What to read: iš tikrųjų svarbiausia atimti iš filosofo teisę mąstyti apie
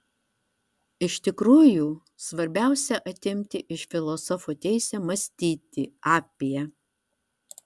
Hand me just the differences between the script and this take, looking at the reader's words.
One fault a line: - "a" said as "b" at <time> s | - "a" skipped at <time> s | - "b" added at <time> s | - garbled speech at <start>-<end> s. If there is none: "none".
none